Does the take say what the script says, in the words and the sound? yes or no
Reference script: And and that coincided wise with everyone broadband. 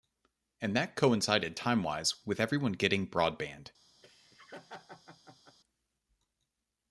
no